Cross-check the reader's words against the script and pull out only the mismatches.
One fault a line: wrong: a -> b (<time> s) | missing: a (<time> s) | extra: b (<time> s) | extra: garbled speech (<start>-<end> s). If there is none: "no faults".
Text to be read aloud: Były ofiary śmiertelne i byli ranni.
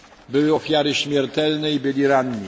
no faults